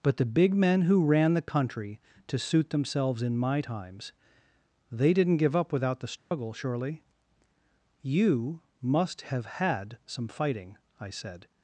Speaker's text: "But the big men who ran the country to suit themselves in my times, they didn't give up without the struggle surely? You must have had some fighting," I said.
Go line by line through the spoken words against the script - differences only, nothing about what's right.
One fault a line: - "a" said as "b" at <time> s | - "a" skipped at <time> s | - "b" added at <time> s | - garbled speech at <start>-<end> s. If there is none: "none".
none